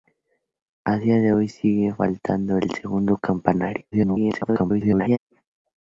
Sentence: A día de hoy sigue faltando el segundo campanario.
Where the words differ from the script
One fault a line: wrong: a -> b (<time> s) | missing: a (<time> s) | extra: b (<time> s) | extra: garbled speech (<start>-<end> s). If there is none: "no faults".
extra: garbled speech (3.9-5.2 s)